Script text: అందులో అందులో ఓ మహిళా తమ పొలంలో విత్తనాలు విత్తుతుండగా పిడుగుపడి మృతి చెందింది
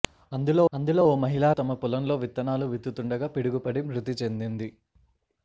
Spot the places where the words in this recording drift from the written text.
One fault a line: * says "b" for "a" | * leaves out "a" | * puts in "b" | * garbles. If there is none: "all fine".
all fine